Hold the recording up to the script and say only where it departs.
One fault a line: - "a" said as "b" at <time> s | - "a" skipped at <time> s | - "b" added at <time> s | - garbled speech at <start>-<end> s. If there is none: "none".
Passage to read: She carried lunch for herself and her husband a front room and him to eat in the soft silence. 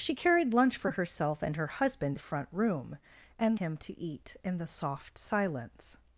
none